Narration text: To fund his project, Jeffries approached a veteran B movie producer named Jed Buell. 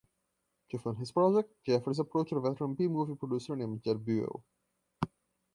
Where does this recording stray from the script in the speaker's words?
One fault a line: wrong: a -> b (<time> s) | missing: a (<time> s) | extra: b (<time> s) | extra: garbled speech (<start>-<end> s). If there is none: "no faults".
no faults